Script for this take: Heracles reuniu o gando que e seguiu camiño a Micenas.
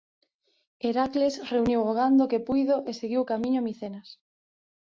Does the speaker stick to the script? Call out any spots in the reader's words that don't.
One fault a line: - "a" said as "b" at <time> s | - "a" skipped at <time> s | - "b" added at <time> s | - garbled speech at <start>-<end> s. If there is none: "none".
- "puido" added at 2.5 s